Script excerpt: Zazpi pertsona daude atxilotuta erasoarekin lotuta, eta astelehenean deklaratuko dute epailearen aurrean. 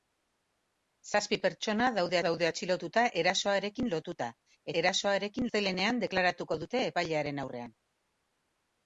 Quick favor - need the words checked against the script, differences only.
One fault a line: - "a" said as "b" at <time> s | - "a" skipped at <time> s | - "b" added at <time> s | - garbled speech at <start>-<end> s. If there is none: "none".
- "daude" added at 2.2 s
- "eta" said as "erasoarekin" at 4.8 s